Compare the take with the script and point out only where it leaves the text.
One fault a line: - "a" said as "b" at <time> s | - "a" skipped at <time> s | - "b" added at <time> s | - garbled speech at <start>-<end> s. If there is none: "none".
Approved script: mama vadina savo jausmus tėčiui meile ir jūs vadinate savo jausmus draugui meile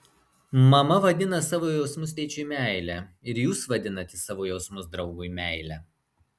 none